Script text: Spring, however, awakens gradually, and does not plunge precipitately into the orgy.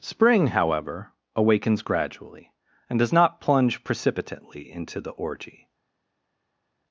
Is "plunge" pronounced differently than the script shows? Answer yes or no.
no